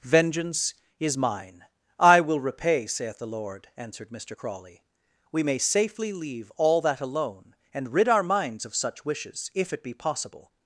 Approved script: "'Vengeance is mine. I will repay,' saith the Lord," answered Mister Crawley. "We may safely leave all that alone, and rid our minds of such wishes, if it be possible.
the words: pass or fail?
pass